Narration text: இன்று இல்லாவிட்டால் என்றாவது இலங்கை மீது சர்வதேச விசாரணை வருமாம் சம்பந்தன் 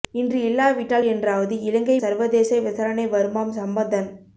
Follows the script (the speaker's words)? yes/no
no